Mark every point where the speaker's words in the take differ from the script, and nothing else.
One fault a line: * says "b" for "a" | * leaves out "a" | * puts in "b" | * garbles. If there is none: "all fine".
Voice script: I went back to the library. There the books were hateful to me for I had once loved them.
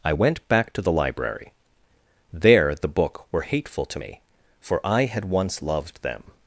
* says "book" for "books"